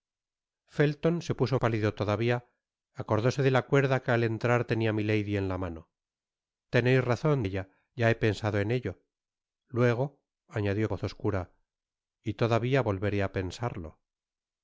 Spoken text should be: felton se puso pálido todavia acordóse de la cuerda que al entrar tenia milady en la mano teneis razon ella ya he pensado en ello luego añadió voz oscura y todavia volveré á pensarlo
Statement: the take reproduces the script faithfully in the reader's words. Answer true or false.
true